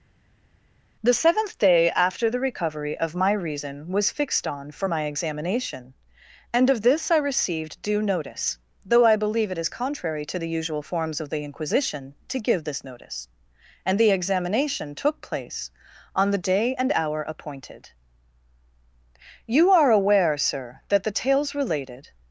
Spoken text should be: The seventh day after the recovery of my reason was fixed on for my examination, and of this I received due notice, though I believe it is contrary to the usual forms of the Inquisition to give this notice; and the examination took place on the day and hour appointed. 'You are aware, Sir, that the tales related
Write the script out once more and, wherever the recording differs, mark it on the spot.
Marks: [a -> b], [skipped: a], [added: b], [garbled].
The seventh day after the recovery of my reason was fixed on for my examination, and of this I received due notice, though I believe it is contrary to the usual forms of the Inquisition to give this notice; and the examination took place on the day and hour appointed. 'You are aware, Sir, that the tales related